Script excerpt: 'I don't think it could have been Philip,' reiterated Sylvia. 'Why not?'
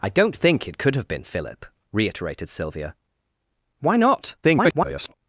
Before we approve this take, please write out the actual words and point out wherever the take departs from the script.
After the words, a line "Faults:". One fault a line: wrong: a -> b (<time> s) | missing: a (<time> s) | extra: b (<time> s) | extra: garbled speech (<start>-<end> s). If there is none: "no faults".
'I don't think it could have been Philip,' reiterated Sylvia. 'Why not?' [garbled]
Faults:
extra: garbled speech (4.4-5.1 s)